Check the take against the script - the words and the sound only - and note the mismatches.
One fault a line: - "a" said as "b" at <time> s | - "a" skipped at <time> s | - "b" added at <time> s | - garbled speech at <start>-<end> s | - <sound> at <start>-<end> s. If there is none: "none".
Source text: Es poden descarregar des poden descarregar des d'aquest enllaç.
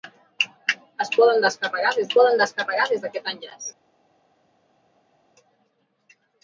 none